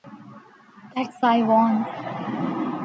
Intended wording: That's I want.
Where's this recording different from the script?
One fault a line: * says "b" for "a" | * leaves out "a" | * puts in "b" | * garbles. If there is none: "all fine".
all fine